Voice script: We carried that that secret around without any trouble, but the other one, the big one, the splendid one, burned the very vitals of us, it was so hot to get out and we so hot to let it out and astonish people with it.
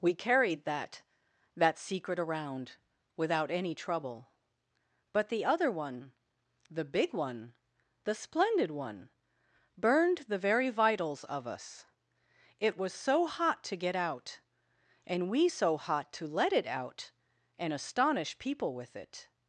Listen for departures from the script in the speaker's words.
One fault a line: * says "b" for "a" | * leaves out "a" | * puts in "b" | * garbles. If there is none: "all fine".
all fine